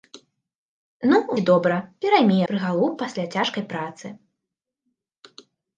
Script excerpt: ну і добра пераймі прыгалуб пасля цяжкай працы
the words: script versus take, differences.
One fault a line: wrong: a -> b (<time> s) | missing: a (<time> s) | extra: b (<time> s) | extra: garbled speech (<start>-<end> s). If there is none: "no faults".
no faults